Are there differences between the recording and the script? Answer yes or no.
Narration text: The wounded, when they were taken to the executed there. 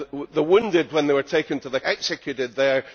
no